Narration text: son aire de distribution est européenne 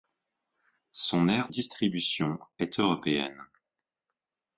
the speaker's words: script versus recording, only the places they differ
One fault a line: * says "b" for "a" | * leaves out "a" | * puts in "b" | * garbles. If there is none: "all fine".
* leaves out "de"